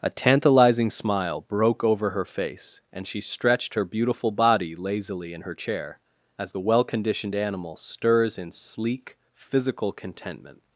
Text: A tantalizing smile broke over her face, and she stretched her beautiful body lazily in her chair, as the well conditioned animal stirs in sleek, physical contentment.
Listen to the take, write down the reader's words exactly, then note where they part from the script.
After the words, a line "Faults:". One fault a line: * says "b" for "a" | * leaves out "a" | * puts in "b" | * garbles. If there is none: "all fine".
A tantalizing smile broke over her face, and she stretched her beautiful body lazily in her chair, as the well conditioned animal stirs in sleek, physical contentment.
Faults:
all fine